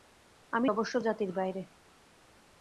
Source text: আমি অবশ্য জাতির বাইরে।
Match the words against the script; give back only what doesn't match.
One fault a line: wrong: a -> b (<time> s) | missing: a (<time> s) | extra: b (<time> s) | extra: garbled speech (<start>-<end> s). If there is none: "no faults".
no faults